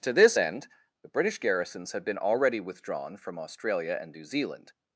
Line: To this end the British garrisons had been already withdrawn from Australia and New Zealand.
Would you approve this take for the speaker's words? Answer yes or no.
yes